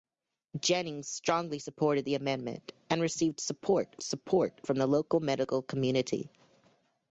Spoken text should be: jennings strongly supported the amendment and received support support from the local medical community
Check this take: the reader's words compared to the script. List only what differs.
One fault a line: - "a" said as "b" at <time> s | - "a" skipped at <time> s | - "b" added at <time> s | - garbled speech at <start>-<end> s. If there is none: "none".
none